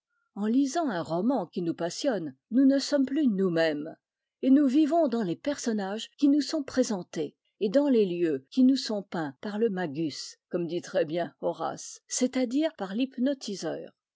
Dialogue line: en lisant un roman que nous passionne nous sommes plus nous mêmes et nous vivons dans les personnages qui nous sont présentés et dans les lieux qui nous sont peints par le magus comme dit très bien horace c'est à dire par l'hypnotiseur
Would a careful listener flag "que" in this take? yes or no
yes